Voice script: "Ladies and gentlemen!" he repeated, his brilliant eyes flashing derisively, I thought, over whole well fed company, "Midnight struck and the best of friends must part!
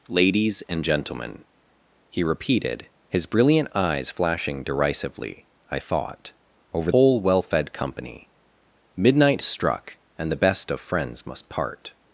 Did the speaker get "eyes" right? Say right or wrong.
right